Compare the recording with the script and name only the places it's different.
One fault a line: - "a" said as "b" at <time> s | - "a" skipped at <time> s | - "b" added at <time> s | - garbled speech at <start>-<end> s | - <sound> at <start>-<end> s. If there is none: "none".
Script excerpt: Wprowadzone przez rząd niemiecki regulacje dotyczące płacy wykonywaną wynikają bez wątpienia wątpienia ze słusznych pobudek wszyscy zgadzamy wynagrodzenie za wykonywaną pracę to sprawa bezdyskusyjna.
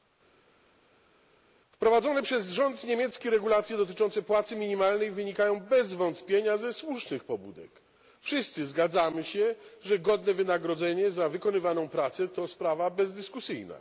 - "wykonywaną" said as "minimalnej" at 4.6 s
- "wątpienia" skipped at 6.6 s
- "się że godne" added at 9.2 s